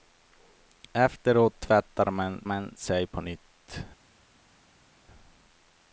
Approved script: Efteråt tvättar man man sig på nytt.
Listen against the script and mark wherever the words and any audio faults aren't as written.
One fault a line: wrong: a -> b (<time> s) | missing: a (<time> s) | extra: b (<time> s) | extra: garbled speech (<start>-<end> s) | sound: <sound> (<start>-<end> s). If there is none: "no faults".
no faults